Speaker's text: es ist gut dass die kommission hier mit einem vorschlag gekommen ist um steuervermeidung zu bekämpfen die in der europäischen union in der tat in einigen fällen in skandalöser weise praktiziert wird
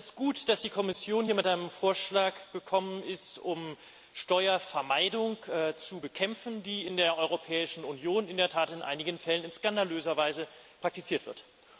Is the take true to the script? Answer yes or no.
yes